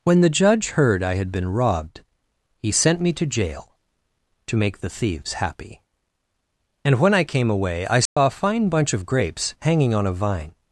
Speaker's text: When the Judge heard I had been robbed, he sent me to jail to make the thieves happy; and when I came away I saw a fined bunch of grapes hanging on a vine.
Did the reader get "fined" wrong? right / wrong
wrong